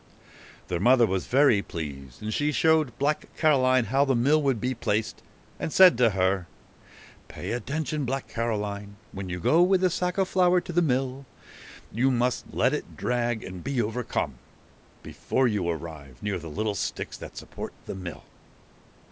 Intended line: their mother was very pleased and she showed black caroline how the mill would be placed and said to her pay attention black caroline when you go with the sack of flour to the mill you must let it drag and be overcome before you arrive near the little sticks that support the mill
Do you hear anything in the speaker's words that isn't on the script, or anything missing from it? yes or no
no